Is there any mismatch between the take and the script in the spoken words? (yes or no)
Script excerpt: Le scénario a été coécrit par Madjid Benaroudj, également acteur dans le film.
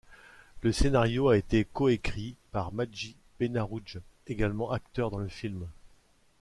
no